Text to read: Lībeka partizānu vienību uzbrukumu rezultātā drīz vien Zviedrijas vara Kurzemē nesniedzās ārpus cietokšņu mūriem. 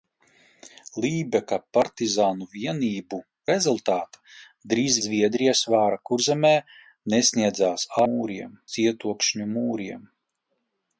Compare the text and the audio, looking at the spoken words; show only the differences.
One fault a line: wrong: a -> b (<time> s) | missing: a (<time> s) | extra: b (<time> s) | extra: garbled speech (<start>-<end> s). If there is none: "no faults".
missing: uzbrukumu (3.2 s)
missing: vien (5.0 s)
wrong: ārpus -> mūriem (8.0 s)